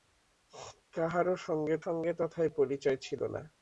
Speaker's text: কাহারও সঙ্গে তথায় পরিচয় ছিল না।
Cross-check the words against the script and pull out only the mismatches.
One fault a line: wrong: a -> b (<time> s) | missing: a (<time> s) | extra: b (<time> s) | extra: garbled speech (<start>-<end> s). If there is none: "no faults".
extra: সঙ্গে (1.8 s)